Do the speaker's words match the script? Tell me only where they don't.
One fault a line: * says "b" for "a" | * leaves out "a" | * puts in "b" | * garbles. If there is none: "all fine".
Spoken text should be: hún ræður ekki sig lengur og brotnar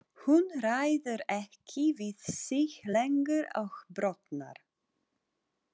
* puts in "við"